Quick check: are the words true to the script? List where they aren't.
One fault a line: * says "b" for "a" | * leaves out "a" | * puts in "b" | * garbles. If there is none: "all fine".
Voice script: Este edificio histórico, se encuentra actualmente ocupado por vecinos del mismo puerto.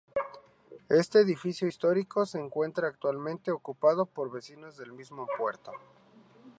all fine